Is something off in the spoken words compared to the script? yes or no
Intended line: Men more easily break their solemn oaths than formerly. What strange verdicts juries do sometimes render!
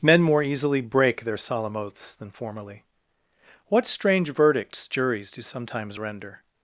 no